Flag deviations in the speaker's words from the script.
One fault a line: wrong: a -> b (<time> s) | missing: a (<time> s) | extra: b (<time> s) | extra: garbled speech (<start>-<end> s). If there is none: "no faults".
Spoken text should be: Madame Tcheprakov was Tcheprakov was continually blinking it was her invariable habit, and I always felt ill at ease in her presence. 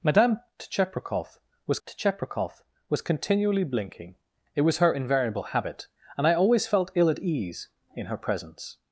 no faults